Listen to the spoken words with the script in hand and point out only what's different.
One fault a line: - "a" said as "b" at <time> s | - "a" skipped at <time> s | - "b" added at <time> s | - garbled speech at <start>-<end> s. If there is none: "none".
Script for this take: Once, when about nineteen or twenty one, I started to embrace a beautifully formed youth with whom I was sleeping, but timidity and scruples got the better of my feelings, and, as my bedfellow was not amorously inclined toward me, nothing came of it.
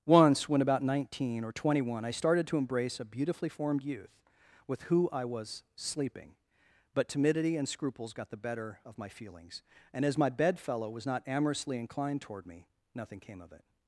- "whom" said as "who" at 4.8 s